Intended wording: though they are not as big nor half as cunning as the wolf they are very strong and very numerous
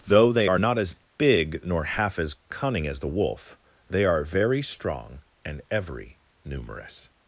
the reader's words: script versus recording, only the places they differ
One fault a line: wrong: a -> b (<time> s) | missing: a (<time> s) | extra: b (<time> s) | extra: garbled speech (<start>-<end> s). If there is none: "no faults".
wrong: very -> every (5.7 s)